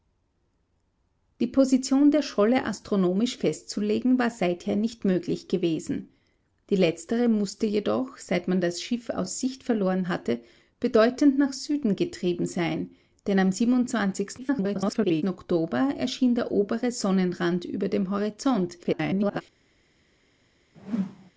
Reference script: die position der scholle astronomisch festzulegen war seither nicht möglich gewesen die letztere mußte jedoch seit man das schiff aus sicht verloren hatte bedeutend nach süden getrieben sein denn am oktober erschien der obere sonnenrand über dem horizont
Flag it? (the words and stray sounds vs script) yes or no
yes